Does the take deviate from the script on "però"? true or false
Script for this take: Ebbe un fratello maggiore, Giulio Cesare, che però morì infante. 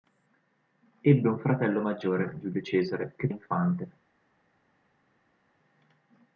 true